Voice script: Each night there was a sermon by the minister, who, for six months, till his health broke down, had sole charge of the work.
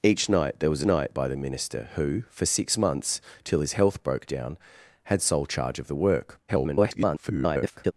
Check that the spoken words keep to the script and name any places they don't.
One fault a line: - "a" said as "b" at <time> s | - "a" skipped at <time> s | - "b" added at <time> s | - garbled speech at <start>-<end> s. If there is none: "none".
- "sermon" said as "night" at 0.8 s
- garbled speech at 6.5-7.9 s